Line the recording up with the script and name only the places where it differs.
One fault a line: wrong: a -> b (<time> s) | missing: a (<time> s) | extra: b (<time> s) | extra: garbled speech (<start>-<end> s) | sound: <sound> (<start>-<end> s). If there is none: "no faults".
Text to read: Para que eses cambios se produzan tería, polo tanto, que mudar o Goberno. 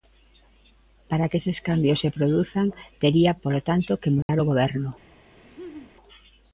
sound: dropout (4.2-4.3 s)
sound: laugh (5.4-5.9 s)